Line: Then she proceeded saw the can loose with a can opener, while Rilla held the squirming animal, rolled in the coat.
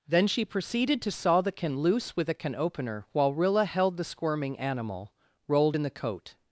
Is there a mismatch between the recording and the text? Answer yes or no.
yes